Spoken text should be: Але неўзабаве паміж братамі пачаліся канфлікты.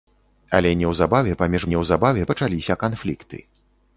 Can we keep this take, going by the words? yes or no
no